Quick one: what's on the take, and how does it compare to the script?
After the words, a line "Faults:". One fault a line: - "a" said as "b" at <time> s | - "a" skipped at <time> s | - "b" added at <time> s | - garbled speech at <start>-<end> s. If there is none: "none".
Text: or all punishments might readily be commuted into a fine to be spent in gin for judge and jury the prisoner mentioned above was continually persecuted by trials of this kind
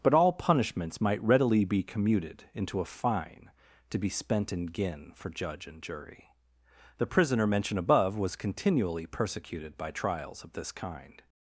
but all punishments might readily be commuted into a fine to be spent in gin for judge and jury the prisoner mentioned above was continually persecuted by trials of this kind
Faults:
- "or" said as "but" at 0.0 s